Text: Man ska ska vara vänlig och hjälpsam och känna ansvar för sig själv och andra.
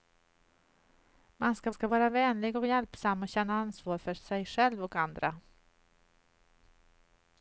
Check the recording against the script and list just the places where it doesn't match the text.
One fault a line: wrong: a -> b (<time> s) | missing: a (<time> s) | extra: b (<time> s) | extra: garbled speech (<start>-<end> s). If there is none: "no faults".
no faults